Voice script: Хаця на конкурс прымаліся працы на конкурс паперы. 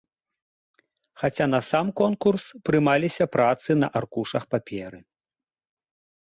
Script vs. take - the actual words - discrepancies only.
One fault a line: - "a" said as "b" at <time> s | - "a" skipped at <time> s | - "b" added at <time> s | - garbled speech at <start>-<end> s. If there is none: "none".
- "сам" added at 1.7 s
- "конкурс" said as "аркушах" at 4.0 s